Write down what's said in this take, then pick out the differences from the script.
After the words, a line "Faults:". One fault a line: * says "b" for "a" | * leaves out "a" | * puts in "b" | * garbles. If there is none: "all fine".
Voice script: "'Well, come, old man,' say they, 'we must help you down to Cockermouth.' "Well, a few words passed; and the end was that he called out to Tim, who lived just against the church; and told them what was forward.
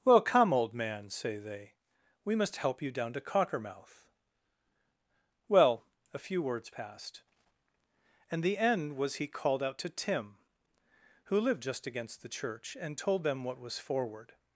"'Well, come, old man,' say they, 'we must help you down to Cockermouth.' "Well, a few words passed; and the end was he called out to Tim, who lived just against the church; and told them what was forward.
Faults:
* leaves out "that"